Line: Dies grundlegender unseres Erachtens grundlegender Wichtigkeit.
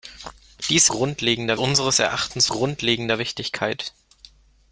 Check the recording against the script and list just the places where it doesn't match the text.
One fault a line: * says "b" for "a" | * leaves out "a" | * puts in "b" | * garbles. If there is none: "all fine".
all fine